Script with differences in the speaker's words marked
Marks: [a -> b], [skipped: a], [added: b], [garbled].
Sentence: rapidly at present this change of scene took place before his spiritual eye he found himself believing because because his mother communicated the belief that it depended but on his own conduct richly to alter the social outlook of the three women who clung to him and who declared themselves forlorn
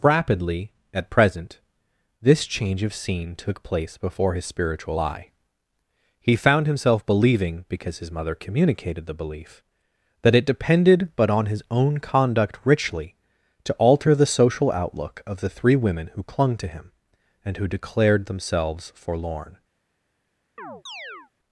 rapidly at present this change of scene took place before his spiritual eye he found himself believing because [skipped: because] his mother communicated the belief that it depended but on his own conduct richly to alter the social outlook of the three women who clung to him and who declared themselves forlorn